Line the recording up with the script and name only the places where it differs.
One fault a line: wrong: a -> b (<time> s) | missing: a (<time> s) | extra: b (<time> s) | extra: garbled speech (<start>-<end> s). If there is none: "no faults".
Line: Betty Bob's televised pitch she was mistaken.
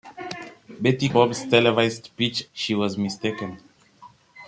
no faults